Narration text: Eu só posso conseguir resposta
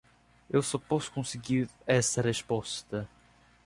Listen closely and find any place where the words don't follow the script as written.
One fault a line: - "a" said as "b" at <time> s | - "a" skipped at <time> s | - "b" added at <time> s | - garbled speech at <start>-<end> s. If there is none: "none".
- "essa" added at 1.9 s